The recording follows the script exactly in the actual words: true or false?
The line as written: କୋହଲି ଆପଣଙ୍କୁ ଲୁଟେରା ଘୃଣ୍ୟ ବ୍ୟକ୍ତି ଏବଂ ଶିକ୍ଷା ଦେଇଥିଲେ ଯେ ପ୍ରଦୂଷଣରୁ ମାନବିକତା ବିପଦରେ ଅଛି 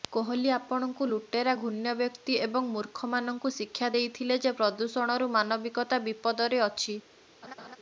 false